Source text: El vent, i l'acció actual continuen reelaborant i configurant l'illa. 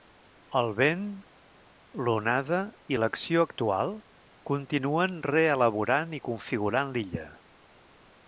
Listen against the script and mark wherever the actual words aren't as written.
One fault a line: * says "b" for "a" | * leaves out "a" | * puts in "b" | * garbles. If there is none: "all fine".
* puts in "l'onada"